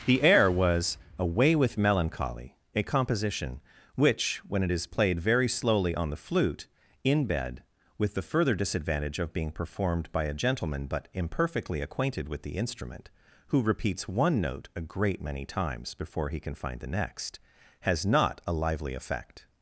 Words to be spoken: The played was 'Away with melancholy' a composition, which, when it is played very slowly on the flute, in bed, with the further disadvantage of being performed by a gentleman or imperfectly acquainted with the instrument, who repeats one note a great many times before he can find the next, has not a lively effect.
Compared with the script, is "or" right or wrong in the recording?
wrong